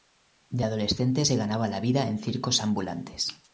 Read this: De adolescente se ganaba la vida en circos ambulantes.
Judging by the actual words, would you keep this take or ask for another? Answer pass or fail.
pass